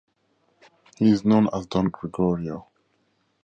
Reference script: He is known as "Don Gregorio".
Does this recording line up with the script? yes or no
yes